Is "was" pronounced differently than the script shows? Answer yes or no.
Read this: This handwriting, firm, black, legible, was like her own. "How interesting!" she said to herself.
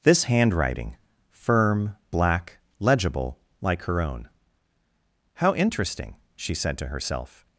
yes